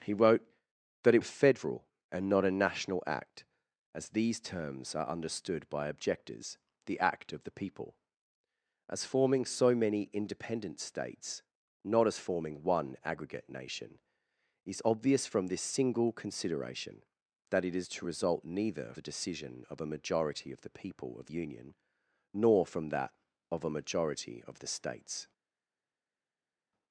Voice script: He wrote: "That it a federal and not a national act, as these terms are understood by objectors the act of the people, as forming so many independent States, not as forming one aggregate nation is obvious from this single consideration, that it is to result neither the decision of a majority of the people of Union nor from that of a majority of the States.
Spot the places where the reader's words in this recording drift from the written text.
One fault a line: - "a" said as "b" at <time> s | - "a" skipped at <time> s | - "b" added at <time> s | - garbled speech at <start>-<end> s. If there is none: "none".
none